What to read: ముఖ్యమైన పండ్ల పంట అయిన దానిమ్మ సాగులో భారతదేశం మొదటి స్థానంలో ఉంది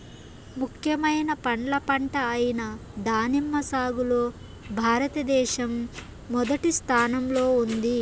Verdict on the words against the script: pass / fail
pass